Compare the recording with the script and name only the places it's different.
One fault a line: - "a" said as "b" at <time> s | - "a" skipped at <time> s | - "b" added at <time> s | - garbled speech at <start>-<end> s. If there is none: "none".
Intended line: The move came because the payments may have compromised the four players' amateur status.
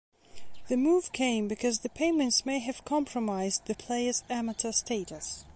- "four" skipped at 3.8 s